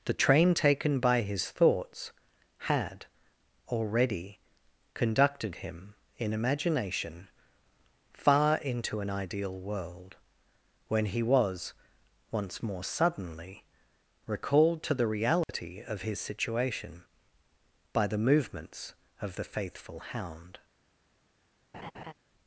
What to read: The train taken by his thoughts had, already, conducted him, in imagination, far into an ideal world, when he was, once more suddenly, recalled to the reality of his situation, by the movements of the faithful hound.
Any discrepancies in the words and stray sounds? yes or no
yes